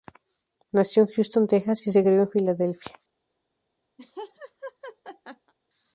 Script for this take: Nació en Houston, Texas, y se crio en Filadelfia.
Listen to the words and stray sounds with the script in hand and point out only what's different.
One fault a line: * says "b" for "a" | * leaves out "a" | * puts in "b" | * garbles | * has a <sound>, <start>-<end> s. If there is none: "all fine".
* has a laugh, 4.0-5.5 s